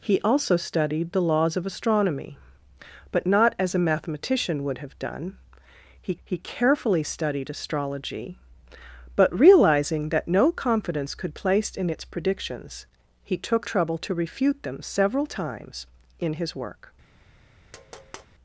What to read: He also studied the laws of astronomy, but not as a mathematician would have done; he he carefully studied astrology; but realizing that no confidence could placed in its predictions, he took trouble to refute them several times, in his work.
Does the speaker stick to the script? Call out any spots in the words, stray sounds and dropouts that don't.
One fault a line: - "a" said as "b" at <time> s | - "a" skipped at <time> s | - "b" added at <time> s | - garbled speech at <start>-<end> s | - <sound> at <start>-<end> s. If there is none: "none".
- tap at 17.7-18.3 s